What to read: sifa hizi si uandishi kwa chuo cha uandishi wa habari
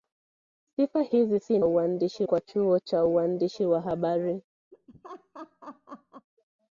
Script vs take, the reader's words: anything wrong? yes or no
no